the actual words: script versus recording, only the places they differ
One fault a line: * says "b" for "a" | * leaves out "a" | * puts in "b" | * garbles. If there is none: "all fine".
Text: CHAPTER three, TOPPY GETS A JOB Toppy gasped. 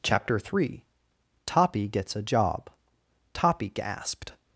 all fine